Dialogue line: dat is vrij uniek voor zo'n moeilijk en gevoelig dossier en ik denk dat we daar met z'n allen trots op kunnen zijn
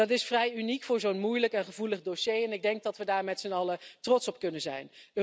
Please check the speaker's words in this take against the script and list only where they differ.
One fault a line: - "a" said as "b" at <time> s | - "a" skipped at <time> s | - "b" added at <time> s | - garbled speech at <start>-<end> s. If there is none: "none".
none